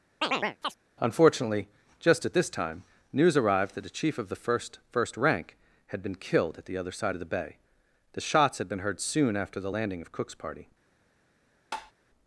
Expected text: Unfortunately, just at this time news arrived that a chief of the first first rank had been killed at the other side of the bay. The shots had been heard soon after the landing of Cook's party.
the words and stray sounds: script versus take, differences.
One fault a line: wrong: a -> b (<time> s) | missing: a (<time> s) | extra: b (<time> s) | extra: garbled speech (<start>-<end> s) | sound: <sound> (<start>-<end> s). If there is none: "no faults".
sound: chirp (0.2-0.8 s)
sound: tap (11.7-11.9 s)